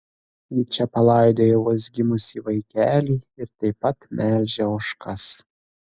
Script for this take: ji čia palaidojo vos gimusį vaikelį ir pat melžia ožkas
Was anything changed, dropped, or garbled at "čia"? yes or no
no